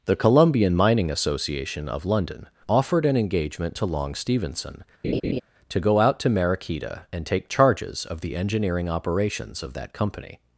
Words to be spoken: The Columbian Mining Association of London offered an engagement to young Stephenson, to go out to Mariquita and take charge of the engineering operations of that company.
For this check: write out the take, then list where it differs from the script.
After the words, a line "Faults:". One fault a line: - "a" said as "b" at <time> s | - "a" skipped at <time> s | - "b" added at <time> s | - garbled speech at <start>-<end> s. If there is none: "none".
The Columbian Mining Association of London offered an engagement to long Stephenson, to go out to Mariquita and take charges of the engineering operations of that company.
Faults:
- "young" said as "long" at 3.9 s
- "charge" said as "charges" at 7.5 s